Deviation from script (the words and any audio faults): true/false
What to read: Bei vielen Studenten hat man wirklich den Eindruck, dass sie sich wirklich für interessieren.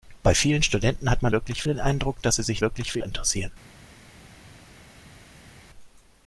false